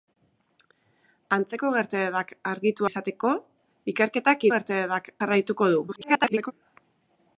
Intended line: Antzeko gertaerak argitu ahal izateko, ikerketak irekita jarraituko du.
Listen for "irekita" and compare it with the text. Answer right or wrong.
wrong